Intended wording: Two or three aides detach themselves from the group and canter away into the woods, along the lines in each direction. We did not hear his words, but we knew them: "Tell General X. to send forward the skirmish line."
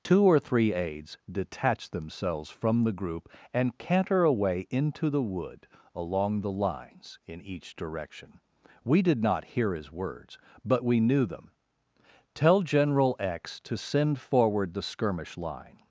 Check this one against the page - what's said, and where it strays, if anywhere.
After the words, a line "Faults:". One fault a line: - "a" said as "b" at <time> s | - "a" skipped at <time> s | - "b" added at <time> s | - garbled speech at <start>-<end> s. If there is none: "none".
Two or three aides detach themselves from the group and canter away into the wood, along the lines in each direction. We did not hear his words, but we knew them: "Tell General X. to send forward the skirmish line."
Faults:
- "woods" said as "wood" at 5.2 s